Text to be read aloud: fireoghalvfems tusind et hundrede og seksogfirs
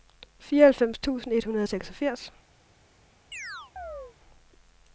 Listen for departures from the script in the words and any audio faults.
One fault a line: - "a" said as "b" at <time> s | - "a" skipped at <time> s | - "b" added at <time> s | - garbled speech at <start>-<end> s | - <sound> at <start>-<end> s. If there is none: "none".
- chirp at 3.3-4.2 s